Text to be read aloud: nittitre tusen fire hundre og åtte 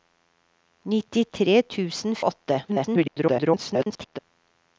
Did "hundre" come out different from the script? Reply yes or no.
yes